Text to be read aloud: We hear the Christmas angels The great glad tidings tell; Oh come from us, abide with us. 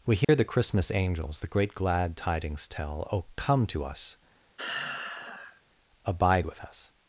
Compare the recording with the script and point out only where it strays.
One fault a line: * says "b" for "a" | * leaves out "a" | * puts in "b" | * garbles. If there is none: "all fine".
* says "to" for "from"